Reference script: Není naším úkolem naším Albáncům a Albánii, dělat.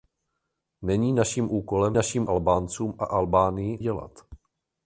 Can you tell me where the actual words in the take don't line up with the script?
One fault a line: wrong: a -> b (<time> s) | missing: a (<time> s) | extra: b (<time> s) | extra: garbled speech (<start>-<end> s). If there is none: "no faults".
no faults